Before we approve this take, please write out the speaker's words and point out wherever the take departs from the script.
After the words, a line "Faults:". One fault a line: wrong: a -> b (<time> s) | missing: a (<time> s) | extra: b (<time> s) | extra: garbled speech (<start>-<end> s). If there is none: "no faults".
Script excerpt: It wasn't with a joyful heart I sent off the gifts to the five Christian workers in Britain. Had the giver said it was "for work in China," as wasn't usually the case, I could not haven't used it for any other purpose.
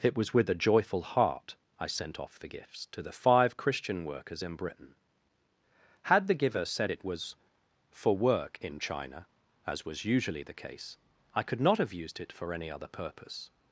It was with a joyful heart I sent off the gifts to the five Christian workers in Britain. Had the giver said it was "for work in China," as was usually the case, I could not have used it for any other purpose.
Faults:
wrong: wasn't -> was (0.2 s)
wrong: wasn't -> was (9.9 s)
wrong: haven't -> have (11.8 s)